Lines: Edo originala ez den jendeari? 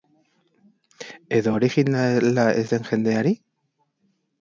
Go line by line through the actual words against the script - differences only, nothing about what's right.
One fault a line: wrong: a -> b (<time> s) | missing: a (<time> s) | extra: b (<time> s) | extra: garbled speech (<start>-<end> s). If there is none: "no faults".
no faults